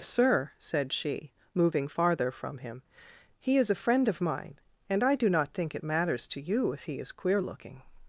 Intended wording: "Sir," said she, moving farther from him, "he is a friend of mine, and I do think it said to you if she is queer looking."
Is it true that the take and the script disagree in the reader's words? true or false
true